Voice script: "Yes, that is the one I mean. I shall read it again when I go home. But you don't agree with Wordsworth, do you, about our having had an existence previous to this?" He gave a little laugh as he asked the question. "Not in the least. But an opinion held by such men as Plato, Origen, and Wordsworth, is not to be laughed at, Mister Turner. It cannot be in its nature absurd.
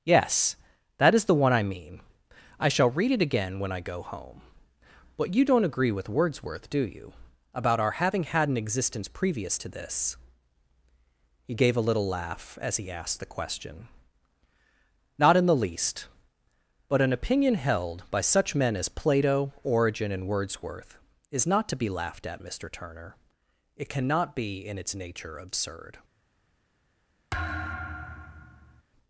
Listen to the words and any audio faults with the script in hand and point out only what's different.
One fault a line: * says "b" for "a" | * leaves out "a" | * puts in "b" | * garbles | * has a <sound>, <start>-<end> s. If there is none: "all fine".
* has a thud, 27.3-28.8 s